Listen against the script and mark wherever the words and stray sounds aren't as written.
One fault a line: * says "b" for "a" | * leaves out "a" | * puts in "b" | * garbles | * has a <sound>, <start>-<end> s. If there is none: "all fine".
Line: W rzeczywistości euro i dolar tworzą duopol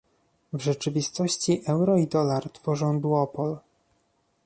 all fine